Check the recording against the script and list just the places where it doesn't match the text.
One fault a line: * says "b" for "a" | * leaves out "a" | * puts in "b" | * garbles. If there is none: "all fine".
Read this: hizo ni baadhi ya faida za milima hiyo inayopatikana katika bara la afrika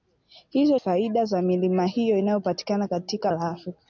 * leaves out "ni baadhi ya"
* leaves out "bara"